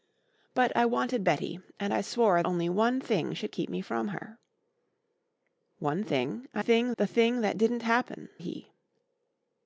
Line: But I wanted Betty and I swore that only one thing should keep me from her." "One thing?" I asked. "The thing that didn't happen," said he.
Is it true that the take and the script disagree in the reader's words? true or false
true